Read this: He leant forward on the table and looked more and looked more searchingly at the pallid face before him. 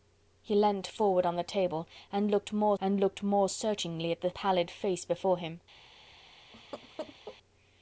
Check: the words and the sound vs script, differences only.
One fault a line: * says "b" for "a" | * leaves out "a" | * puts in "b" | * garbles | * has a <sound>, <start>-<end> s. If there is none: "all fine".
* has a laugh, 6.5-7.4 s